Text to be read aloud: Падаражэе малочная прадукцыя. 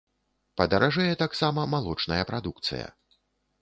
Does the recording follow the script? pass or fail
fail